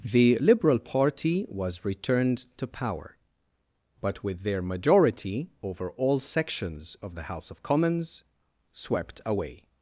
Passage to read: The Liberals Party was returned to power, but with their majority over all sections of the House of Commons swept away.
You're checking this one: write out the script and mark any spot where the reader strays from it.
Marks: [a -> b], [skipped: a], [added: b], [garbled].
The [Liberals -> Liberal] Party was returned to power, but with their majority over all sections of the House of Commons swept away.